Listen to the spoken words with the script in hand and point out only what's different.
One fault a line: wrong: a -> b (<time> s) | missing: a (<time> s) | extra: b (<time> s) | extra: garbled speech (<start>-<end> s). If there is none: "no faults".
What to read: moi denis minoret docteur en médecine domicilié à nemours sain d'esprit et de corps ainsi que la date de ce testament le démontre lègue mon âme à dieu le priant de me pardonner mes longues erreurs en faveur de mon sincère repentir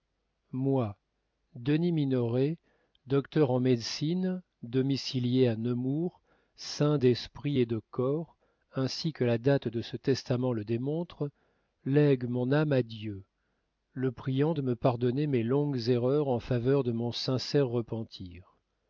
no faults